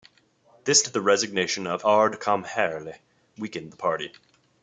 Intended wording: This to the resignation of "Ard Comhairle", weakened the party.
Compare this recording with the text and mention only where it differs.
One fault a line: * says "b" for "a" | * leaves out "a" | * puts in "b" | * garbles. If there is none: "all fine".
all fine